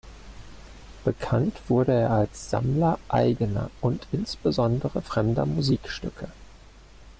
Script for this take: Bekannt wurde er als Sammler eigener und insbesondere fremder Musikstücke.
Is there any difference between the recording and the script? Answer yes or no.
no